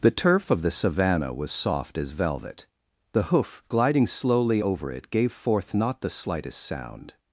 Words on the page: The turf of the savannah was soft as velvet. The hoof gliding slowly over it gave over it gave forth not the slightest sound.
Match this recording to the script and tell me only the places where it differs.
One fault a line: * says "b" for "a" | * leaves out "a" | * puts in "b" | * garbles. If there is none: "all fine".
* leaves out "over it gave"